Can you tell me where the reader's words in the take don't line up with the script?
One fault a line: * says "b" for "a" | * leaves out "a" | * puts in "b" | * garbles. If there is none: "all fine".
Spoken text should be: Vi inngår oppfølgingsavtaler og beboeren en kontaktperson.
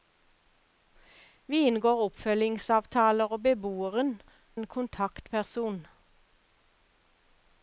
all fine